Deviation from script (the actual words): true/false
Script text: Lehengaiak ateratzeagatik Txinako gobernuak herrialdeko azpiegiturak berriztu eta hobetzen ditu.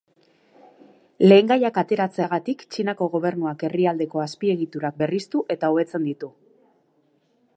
false